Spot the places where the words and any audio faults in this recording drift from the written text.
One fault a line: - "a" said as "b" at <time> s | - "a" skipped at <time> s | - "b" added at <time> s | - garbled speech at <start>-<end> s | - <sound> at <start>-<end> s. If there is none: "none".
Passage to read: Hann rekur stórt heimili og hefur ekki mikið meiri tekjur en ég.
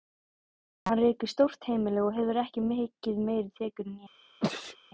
- sneeze at 4.4-4.8 s